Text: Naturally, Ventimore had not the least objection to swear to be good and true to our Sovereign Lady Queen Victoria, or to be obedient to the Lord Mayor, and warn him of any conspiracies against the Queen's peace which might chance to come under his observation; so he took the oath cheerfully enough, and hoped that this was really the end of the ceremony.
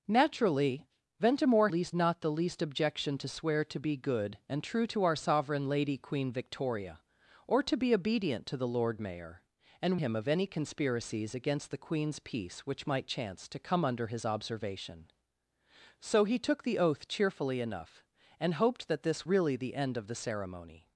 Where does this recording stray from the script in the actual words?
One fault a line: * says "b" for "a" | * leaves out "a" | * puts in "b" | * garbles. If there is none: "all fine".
* says "least" for "had"
* leaves out "warn"
* leaves out "was"